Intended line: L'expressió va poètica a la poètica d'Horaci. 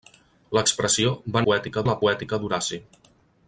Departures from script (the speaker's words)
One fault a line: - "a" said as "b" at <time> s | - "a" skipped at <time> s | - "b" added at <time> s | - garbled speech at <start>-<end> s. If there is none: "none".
none